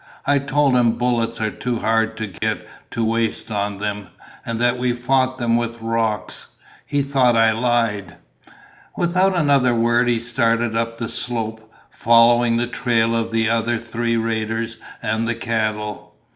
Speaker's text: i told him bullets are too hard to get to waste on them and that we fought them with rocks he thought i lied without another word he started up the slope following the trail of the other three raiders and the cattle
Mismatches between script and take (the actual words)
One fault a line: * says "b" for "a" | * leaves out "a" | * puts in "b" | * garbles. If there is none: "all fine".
all fine